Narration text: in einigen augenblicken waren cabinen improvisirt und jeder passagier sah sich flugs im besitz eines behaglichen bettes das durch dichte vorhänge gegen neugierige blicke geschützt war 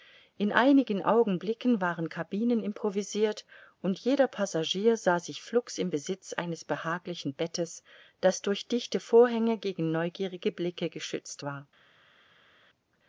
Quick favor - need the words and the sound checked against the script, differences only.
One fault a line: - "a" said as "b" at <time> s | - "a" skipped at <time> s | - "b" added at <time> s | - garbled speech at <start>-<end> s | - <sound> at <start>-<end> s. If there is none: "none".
none